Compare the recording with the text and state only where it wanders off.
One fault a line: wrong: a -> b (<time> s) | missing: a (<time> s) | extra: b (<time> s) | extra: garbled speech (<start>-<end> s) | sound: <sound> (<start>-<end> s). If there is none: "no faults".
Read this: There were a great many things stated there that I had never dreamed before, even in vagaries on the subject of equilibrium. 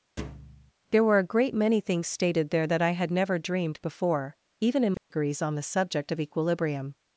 sound: thud (0.2-0.7 s)
sound: dropout (5.0-5.1 s)